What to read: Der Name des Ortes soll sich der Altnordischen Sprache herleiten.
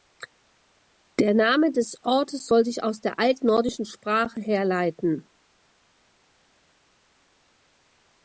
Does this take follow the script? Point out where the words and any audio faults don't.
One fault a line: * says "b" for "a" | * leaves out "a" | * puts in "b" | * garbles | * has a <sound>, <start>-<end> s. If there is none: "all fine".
* puts in "aus"